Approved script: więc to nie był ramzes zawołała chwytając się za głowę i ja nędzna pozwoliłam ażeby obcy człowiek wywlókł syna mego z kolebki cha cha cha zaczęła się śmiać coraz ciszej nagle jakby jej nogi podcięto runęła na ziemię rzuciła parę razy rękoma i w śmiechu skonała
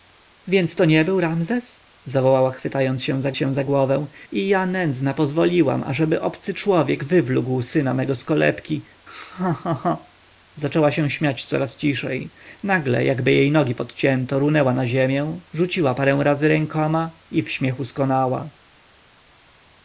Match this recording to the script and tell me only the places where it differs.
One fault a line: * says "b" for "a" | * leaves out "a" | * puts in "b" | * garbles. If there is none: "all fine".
* puts in "się za"